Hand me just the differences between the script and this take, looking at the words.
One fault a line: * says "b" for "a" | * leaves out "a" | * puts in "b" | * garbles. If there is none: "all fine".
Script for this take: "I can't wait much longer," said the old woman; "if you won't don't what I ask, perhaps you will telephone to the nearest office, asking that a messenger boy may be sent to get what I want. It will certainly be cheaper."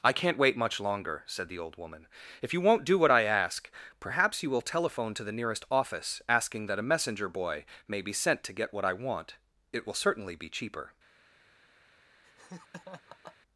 * says "do" for "don't"